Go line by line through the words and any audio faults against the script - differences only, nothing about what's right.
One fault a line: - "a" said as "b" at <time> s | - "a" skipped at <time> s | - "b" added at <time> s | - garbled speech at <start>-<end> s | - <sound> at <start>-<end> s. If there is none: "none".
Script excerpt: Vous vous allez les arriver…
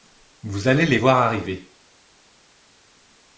- "vous" skipped at 0.7 s
- "voir" added at 0.9 s